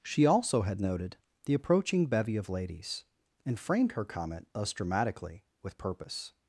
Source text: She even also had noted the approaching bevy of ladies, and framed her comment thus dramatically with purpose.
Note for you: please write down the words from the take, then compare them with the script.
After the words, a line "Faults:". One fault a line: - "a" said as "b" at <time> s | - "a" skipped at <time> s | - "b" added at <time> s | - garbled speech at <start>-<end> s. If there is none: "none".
She also had noted the approaching bevy of ladies, and framed her comment thus dramatically with purpose.
Faults:
- "even" skipped at 0.2 s